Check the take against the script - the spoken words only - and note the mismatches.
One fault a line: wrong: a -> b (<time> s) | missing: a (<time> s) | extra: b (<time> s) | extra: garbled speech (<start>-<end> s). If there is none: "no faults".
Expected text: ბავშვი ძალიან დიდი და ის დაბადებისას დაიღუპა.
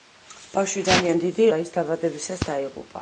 no faults